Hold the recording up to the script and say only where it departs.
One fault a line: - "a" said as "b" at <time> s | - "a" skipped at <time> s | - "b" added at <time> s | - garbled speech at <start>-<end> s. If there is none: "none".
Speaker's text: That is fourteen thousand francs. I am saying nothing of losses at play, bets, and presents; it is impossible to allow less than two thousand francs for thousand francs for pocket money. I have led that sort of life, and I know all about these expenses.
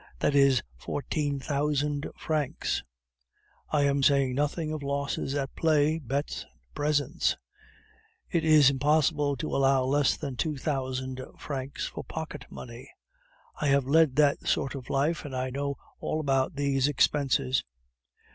- "thousand francs for" skipped at 12.0 s